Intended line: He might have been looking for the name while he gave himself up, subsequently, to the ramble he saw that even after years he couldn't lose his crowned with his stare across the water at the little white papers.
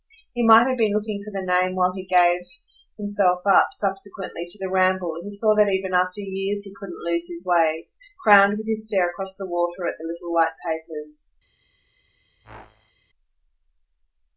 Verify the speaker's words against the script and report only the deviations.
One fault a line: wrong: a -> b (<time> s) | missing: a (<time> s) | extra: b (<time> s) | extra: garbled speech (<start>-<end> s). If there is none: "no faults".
extra: way (7.4 s)